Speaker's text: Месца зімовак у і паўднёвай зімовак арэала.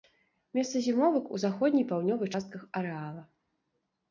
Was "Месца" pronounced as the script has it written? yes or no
yes